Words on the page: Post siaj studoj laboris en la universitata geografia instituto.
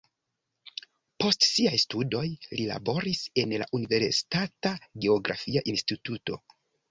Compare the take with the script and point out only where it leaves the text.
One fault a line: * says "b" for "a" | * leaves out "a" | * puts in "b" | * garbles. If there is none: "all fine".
* puts in "li"